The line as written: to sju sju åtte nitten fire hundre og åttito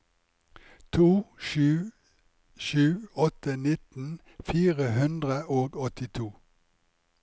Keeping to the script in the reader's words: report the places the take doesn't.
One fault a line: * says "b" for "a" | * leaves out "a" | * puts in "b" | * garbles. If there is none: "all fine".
all fine